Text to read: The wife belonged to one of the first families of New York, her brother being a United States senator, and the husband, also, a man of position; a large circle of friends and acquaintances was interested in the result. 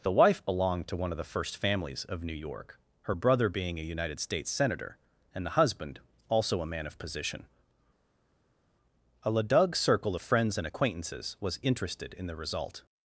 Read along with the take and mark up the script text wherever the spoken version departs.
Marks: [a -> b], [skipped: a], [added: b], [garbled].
The wife belonged to one of the first families of New York, her brother being a United States senator, and the husband, also, a man of position; a [large -> ladug] circle of friends and acquaintances was interested in the result.